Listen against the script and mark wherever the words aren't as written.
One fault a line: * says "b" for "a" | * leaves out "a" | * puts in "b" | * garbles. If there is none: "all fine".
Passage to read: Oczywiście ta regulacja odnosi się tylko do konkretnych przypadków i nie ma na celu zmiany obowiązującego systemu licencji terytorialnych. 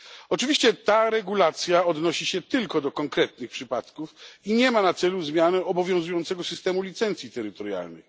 all fine